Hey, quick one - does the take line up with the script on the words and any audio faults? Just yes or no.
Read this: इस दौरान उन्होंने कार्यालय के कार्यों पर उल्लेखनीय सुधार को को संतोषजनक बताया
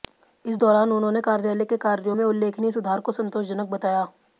no